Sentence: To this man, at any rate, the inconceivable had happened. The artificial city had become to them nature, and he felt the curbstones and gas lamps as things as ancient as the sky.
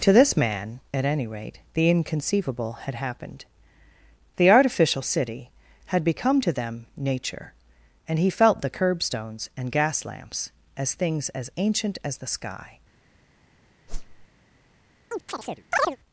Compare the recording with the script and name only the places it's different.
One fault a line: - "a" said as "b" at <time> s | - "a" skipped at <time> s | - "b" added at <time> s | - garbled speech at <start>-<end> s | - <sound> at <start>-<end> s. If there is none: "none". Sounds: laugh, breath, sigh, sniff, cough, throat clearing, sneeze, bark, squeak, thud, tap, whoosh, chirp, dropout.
- whoosh at 13.9-14.3 s
- chirp at 15.1-16.0 s